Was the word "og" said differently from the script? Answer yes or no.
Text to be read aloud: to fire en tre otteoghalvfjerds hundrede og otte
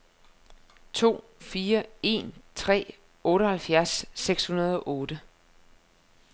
no